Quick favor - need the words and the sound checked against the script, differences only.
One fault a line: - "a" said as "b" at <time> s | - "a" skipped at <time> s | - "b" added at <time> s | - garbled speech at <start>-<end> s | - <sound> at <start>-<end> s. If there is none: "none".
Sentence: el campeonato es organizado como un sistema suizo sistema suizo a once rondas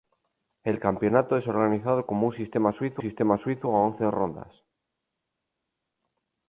none